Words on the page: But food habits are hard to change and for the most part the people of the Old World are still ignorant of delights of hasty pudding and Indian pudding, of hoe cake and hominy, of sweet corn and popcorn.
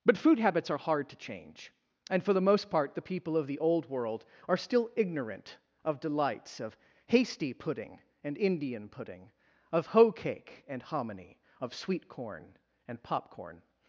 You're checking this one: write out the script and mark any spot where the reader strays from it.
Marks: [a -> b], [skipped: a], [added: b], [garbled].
But food habits are hard to change and for the most part the people of the Old World are still ignorant of delights of hasty pudding and Indian pudding, of hoe cake and hominy, of sweet corn and popcorn.